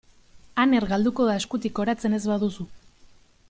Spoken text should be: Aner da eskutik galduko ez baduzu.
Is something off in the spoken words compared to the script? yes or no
yes